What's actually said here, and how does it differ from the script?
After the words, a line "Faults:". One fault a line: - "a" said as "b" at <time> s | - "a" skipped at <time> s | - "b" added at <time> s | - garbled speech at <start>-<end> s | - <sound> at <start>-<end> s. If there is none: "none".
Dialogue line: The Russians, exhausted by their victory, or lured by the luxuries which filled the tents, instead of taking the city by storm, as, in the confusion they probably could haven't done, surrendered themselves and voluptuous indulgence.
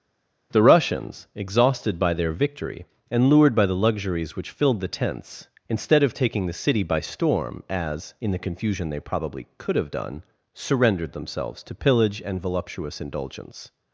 The Russians, exhausted by their victory, and lured by the luxuries which filled the tents, instead of taking the city by storm, as, in the confusion they probably could have done, surrendered themselves to pillage and voluptuous indulgence.
Faults:
- "or" said as "and" at 3.1 s
- "haven't" said as "have" at 9.8 s
- "to pillage" added at 11.6 s